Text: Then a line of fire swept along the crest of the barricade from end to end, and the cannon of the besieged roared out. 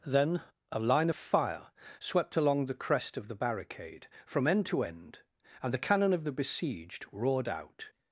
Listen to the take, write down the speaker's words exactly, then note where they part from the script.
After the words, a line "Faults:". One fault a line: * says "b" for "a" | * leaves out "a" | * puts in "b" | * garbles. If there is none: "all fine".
Then a line of fire swept along the crest of the barricade from end to end, and the cannon of the besieged roared out.
Faults:
all fine